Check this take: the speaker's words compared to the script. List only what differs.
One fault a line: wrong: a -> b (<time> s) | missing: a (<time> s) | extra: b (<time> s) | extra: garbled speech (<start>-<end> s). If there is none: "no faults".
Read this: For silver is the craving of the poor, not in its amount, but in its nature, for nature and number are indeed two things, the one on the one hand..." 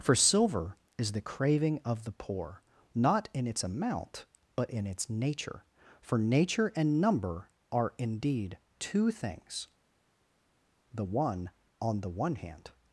no faults